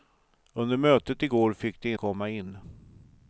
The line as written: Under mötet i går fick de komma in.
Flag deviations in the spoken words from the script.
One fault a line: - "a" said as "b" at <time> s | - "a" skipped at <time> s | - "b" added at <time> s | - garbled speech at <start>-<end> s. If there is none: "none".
none